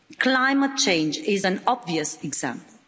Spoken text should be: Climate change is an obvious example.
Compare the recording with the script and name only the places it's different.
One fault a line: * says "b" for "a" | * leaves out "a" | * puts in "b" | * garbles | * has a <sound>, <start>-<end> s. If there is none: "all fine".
all fine